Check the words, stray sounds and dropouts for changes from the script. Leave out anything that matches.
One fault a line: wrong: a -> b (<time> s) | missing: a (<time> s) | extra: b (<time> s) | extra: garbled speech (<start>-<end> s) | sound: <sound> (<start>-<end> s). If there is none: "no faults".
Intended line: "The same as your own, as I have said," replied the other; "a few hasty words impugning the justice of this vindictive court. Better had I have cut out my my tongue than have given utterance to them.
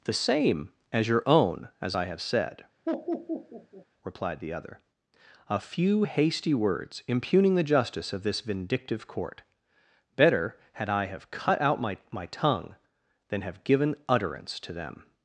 sound: laugh (2.9-3.9 s)